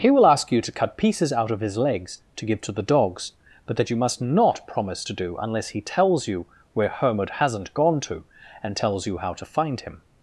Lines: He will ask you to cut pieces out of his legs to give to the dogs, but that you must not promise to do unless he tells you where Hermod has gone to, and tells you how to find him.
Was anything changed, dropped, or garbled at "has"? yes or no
yes